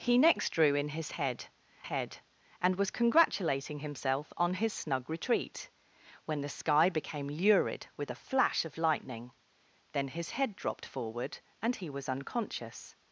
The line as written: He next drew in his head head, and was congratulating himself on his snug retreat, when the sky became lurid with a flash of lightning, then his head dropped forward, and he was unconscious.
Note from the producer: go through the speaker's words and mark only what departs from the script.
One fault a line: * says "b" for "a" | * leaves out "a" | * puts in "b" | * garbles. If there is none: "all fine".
all fine